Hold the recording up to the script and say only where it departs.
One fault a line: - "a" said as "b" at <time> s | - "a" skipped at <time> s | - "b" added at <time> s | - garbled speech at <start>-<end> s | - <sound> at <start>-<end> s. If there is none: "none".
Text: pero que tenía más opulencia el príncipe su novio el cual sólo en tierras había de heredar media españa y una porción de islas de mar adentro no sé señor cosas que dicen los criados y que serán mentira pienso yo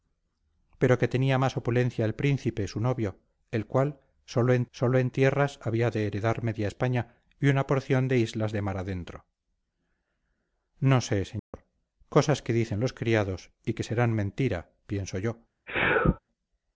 - "sólo en" added at 4.7 s
- dropout at 11.4-11.5 s
- sneeze at 15.7-16.2 s